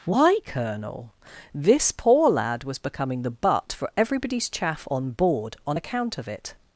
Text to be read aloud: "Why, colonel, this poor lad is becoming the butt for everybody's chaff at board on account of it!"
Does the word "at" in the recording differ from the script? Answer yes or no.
yes